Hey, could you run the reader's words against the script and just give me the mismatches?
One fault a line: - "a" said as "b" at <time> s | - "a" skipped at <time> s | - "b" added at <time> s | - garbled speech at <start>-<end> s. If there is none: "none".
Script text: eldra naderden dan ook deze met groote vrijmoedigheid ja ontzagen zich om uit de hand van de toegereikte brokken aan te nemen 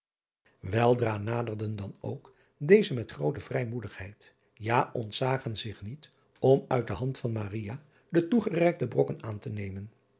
- "niet" added at 5.8 s